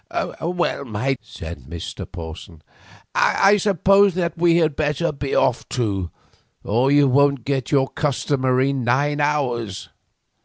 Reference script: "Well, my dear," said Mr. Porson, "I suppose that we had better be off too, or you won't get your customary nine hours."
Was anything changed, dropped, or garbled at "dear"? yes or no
yes